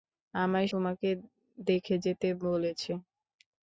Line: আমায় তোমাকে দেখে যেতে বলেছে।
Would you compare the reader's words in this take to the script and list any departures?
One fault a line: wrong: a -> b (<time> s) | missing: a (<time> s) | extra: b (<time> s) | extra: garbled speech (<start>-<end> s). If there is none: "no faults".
no faults